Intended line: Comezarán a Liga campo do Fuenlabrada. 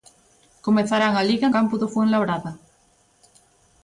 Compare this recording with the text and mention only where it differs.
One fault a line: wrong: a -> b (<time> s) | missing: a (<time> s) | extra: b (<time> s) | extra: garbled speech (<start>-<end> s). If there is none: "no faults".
no faults